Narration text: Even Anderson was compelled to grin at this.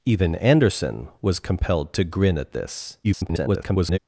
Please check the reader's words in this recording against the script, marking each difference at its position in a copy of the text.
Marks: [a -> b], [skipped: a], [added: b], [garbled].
Even Anderson was compelled to grin at this. [garbled]